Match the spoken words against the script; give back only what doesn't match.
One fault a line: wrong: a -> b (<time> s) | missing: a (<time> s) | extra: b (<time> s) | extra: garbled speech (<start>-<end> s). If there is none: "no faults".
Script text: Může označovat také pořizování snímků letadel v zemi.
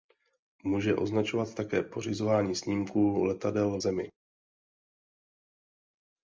no faults